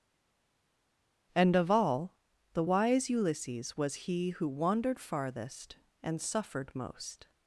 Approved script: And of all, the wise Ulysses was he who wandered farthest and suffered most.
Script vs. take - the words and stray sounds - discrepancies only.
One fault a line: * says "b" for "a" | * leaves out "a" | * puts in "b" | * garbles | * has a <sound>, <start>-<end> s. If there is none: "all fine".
all fine